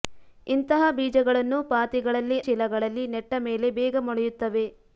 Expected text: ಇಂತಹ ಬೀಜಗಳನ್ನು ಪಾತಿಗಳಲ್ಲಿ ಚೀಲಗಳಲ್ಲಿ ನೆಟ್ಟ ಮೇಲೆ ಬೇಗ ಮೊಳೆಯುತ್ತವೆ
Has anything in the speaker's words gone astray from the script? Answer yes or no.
no